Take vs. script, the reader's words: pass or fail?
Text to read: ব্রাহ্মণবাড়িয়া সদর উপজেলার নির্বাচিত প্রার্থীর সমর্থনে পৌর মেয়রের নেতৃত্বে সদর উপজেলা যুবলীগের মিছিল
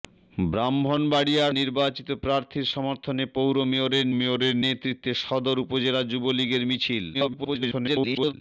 fail